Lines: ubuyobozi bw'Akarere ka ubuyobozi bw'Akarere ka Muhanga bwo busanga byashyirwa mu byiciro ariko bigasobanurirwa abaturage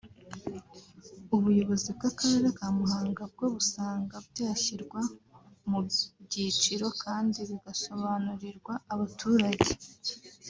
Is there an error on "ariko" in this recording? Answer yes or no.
yes